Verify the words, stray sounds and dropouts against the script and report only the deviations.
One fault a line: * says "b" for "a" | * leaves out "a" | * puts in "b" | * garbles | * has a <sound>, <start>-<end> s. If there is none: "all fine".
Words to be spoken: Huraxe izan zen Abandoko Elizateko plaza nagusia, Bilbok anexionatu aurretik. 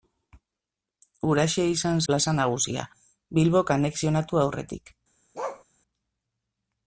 * leaves out "zen Abandoko Elizateko"
* has a bark, 5.3-5.6 s